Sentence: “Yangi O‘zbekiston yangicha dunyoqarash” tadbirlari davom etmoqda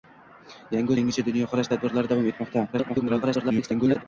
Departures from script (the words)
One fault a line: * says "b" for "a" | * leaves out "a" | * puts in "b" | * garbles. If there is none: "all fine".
* leaves out "O‘zbekiston"
* garbles